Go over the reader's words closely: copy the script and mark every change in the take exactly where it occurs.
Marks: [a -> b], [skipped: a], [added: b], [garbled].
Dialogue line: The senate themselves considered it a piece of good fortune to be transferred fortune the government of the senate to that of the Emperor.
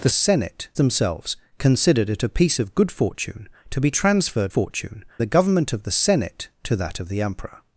The senate themselves considered it a piece of good fortune to be transferred fortune the government of the senate to that of the Emperor.